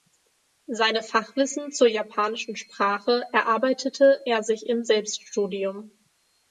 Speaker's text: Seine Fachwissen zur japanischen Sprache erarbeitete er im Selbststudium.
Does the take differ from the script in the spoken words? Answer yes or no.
yes